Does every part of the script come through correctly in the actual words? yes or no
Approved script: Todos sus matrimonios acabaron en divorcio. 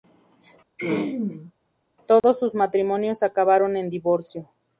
yes